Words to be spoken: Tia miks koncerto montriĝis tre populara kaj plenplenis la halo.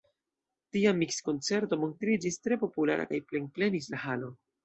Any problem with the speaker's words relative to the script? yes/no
no